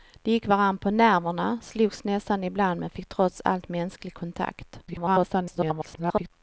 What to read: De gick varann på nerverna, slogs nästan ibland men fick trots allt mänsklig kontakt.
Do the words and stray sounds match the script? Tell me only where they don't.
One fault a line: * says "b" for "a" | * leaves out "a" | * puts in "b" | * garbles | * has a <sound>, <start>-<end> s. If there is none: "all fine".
* garbles